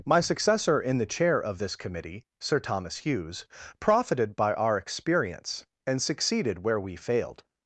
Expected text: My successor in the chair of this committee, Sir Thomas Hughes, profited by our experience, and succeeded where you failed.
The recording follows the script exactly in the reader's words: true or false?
false